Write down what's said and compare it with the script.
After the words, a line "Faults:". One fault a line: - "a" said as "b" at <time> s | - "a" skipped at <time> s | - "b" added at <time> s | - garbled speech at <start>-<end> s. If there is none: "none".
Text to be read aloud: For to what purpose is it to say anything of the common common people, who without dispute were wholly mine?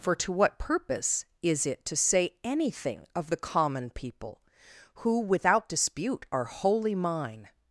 For to what purpose is it to say anything of the common people, who without dispute are wholly mine?
Faults:
- "common" skipped at 3.9 s
- "were" said as "are" at 6.3 s